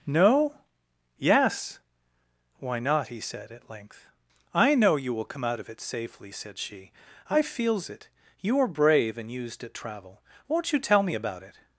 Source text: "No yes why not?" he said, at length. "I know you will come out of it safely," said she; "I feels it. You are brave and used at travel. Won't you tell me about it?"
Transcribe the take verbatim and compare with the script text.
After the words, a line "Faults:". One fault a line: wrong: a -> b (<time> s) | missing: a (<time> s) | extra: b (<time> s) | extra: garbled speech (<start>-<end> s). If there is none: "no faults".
"No yes why not?" he said, at length. "I know you will come out of it safely," said she; "I feels it. You are brave and used at travel. Won't you tell me about it?"
Faults:
no faults